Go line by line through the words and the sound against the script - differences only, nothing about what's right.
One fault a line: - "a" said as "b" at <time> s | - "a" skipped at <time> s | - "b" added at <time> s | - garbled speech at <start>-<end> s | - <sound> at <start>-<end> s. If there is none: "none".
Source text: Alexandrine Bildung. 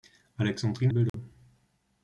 - dropout at 1.1-1.1 s